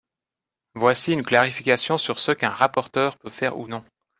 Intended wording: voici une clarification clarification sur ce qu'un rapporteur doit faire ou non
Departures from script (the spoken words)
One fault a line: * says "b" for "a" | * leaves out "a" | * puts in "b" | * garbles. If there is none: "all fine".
* leaves out "clarification"
* says "peut" for "doit"